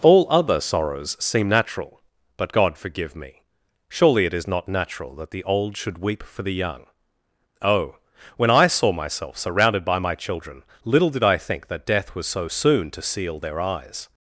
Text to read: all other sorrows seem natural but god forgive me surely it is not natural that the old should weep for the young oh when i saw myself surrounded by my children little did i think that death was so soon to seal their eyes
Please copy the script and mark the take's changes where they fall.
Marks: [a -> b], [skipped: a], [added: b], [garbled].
all other sorrows seem natural but god forgive me surely it is not natural that the old should weep for the young oh when i saw myself surrounded by my children little did i think that death was so soon to seal their eyes